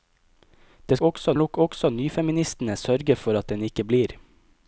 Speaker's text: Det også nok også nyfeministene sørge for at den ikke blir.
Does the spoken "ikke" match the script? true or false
true